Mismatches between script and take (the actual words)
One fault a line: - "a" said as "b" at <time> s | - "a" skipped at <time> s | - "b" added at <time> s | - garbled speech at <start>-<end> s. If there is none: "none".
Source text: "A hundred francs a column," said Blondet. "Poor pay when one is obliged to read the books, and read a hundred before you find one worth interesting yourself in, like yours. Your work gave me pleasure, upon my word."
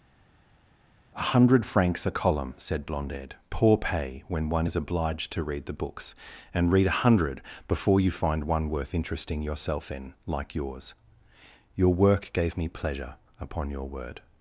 - "my" said as "your" at 13.7 s